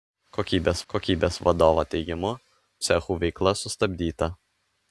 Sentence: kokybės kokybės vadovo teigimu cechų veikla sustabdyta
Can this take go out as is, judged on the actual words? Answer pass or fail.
pass